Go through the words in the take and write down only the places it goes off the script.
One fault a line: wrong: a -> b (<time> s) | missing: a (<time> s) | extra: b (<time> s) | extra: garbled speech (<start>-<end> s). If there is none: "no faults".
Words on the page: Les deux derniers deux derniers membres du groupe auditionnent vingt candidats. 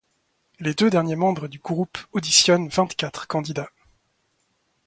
missing: deux derniers (1.2 s)
extra: quatre (2.9 s)